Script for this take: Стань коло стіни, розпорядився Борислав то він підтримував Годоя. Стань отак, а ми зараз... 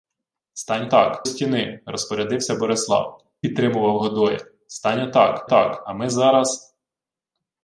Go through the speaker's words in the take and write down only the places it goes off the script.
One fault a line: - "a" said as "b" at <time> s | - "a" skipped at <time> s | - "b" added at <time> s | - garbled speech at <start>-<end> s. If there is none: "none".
- "коло" said as "отак" at 0.9 s
- "то він" skipped at 3.3 s
- "отак" added at 5.4 s